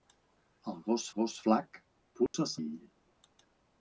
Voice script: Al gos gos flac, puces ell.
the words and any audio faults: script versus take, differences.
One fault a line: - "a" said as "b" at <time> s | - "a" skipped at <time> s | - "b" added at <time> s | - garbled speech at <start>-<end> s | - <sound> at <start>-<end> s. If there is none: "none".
- dropout at 2.3-2.3 s